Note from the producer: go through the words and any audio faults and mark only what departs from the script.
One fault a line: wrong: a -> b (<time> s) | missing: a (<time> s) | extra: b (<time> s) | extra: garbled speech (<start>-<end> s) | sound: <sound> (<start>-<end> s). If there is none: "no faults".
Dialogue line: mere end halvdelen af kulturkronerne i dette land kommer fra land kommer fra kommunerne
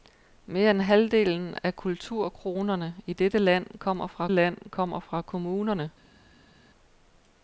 no faults